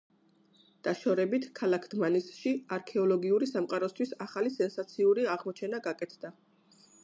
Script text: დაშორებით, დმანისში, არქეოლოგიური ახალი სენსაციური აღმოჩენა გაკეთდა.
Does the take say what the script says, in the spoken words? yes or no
no